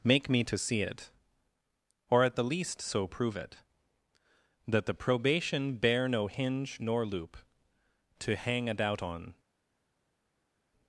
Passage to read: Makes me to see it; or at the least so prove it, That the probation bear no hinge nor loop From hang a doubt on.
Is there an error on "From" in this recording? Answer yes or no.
yes